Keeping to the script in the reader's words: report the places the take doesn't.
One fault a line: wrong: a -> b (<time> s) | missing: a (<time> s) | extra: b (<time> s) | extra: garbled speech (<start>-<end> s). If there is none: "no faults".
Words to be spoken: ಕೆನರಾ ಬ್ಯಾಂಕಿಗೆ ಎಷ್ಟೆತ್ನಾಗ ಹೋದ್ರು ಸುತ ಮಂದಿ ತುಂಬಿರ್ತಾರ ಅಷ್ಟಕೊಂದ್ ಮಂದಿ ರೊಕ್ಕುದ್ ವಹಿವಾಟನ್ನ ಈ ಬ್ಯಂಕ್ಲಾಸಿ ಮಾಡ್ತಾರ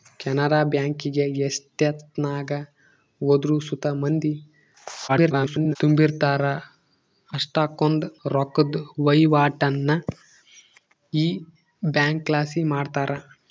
extra: garbled speech (5.1-5.8 s)
missing: ಮಂದಿ (8.1 s)